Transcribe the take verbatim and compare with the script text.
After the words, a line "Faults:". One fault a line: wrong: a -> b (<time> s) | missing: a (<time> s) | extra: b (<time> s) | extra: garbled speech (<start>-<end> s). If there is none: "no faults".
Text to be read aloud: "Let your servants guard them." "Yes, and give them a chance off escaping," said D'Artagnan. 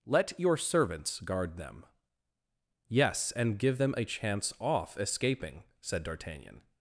"Let your servants guard them." "Yes, and give them a chance off escaping," said D'Artagnan.
Faults:
no faults